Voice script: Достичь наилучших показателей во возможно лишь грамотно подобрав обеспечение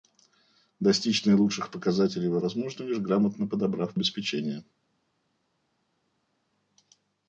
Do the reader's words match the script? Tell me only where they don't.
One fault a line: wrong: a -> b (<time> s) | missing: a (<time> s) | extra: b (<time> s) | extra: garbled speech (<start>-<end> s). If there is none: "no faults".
no faults